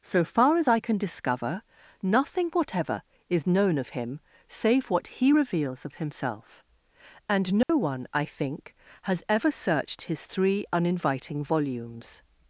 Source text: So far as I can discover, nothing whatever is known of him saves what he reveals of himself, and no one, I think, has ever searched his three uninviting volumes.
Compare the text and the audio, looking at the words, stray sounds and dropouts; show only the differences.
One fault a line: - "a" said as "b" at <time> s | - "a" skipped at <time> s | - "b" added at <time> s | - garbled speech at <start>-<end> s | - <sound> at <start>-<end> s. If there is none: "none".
- "saves" said as "save" at 4.5 s
- dropout at 7.6-7.7 s